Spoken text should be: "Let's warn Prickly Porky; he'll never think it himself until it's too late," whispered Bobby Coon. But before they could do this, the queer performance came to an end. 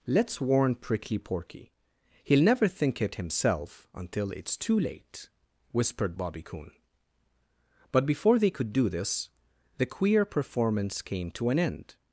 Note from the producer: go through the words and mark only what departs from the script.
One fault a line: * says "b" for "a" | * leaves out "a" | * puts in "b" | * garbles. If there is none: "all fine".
all fine